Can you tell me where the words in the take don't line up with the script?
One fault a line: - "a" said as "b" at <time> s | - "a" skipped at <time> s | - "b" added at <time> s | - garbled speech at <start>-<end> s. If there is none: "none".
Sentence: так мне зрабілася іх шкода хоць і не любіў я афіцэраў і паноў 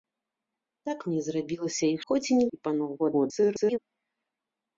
- "шкода" skipped at 2.0 s
- "любіў я афіцэраў" skipped at 2.5 s
- garbled speech at 3.0-3.8 s